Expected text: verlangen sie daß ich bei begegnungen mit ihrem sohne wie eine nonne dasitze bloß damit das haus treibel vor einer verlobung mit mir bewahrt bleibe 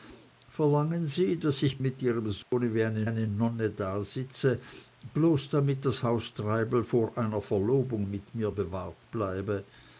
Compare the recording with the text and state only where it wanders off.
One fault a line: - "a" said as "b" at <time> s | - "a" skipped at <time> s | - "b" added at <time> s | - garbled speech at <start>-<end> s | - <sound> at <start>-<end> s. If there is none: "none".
- "bei begegnungen" skipped at 1.8 s
- dropout at 2.4-2.5 s
- "eine" added at 3.0 s